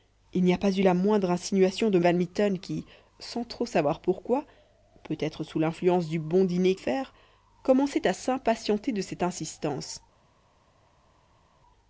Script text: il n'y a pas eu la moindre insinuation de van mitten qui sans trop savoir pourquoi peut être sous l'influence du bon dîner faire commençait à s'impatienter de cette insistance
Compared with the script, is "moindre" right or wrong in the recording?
right